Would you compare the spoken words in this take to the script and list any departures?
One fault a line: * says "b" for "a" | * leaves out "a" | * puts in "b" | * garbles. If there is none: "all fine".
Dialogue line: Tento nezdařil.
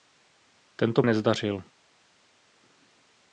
all fine